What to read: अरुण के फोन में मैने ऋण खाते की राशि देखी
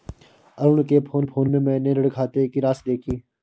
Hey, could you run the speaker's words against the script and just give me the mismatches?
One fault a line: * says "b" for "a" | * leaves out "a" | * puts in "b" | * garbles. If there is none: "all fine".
* puts in "फोन"